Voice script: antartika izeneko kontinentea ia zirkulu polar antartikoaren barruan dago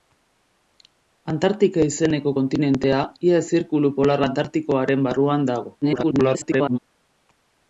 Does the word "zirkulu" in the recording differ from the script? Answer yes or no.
no